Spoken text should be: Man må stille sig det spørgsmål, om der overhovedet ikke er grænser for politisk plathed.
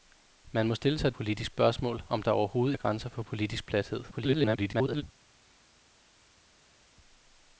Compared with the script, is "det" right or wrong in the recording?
wrong